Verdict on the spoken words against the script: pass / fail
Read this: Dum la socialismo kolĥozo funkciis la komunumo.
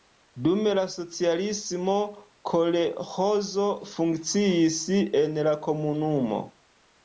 fail